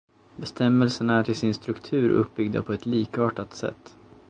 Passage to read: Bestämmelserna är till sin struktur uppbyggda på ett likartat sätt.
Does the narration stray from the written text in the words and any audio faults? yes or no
no